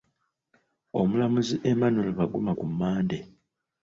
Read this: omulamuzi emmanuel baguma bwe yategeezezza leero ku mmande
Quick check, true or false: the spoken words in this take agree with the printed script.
false